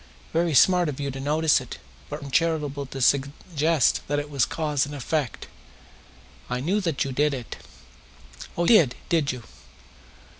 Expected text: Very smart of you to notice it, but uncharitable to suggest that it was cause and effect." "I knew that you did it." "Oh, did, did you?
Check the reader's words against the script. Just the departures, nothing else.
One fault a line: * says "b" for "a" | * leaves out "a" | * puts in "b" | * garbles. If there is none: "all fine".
all fine